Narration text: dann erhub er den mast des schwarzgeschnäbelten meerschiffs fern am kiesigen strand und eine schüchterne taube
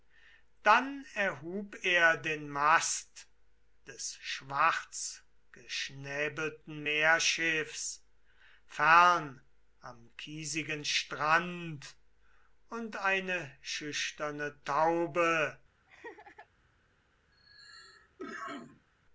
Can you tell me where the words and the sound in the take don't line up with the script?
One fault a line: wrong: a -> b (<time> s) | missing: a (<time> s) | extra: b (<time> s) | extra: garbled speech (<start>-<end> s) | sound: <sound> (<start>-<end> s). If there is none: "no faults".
sound: laugh (15.9-16.5 s)
sound: cough (17.3-18.9 s)